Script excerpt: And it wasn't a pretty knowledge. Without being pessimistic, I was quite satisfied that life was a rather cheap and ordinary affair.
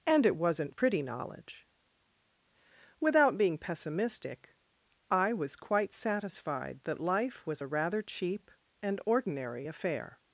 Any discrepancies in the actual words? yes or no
yes